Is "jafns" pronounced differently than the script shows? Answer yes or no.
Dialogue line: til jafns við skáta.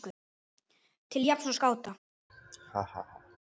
no